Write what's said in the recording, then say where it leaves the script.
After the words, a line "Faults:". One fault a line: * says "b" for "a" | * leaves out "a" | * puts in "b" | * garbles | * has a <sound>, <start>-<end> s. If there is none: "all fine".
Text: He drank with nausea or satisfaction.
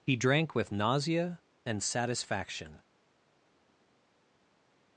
He drank with nausea and satisfaction.
Faults:
* says "and" for "or"